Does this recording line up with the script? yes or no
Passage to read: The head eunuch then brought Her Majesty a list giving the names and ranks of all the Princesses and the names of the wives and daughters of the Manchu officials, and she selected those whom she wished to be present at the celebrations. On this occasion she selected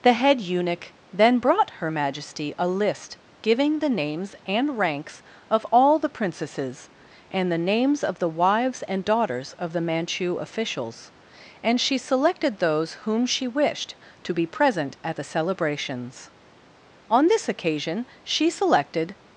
yes